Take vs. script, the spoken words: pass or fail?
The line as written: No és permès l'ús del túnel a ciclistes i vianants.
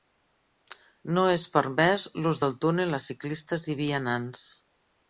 pass